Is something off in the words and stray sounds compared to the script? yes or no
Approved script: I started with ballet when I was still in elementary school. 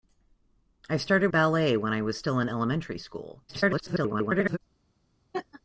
yes